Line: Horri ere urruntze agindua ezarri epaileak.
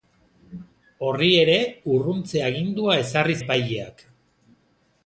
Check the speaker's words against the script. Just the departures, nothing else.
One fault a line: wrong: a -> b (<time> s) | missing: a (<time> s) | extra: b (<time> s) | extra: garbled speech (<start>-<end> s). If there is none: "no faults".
no faults